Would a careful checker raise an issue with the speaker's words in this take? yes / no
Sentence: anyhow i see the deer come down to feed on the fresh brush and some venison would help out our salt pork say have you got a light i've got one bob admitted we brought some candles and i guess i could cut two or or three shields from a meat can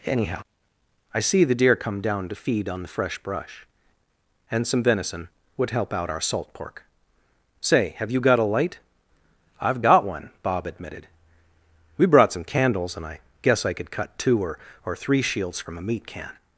no